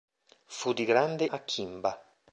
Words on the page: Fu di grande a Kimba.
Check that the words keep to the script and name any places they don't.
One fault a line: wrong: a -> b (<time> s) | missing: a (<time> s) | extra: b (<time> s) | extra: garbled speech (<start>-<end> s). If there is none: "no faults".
no faults